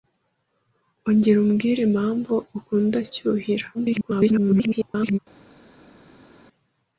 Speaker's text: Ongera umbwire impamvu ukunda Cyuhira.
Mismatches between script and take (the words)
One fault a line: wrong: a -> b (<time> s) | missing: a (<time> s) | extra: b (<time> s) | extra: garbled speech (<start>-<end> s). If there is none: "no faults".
extra: garbled speech (3.7-5.2 s)